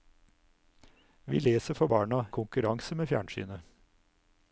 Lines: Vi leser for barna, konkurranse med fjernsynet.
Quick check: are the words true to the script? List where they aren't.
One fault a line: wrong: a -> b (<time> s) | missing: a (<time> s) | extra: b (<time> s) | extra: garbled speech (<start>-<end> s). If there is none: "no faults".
no faults